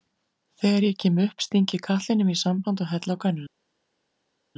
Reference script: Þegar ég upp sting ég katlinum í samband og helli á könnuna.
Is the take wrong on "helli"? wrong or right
right